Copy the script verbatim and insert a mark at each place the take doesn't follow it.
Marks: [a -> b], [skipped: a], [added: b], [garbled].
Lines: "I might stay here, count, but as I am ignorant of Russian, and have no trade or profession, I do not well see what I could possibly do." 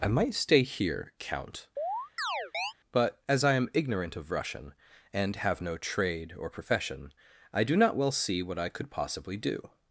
"I might stay here, count, but as I am ignorant of Russian, and have no trade or profession, I do not well see what I could possibly do."